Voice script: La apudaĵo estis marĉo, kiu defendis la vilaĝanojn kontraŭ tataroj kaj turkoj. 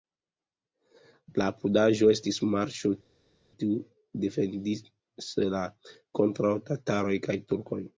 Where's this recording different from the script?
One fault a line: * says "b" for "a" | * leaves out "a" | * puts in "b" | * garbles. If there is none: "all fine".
* leaves out "vilaĝanojn"